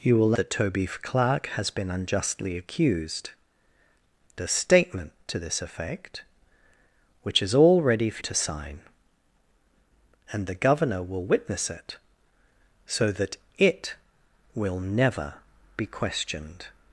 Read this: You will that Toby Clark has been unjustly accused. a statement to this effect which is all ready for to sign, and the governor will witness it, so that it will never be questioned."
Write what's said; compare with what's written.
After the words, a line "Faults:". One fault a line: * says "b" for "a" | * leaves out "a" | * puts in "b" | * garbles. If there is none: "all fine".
You will that Toby Clark has been unjustly accused. a statement to this effect which is all ready for to sign, and the governor will witness it, so that it will never be questioned."
Faults:
all fine